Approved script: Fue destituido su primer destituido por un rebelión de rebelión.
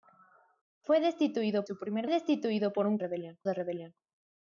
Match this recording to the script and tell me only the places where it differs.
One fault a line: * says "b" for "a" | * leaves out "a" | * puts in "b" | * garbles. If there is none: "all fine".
all fine